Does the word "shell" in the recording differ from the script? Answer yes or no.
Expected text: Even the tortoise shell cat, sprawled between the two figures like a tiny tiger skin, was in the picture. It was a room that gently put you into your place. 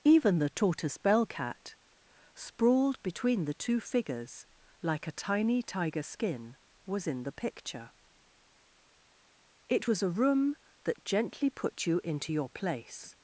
yes